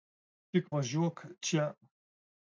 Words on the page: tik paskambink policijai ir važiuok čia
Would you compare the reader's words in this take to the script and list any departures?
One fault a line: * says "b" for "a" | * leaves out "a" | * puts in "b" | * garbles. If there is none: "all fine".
* leaves out "paskambink policijai ir"